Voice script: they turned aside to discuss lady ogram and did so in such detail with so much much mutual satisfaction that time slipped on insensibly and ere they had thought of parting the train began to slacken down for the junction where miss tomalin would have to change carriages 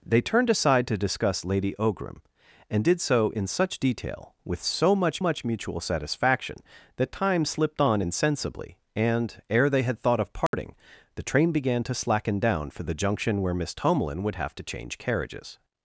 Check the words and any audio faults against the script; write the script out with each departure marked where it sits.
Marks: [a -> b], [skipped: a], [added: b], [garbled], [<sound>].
they turned aside to discuss lady ogram and did so in such detail with so much much mutual satisfaction that time slipped on insensibly and ere they had thought of parting [dropout] the train began to slacken down for the junction where miss tomalin would have to change carriages